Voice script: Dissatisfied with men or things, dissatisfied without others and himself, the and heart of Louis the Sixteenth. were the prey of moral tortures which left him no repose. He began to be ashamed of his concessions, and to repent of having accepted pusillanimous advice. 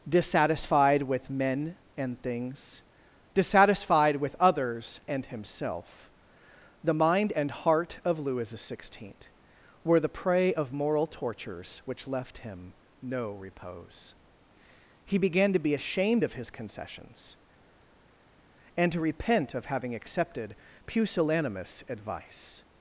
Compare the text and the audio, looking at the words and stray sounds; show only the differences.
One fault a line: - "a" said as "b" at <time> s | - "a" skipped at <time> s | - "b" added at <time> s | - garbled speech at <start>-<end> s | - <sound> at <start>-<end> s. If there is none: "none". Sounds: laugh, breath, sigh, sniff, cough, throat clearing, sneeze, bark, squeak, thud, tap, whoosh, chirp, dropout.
- "or" said as "and" at 1.9 s
- "without" said as "with" at 4.2 s
- "mind" added at 6.9 s